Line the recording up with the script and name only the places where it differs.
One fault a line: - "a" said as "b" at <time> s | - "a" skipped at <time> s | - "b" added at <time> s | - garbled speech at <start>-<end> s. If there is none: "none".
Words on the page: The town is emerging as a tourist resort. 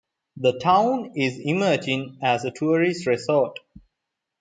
none